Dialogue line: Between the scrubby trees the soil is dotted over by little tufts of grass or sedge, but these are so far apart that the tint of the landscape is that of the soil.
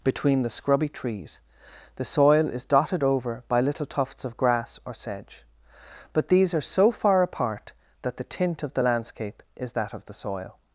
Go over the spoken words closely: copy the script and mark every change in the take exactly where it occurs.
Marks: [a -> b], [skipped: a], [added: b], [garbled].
Between the scrubby trees the soil is dotted over by little tufts of grass or sedge, but these are so far apart that the tint of the landscape is that of the soil.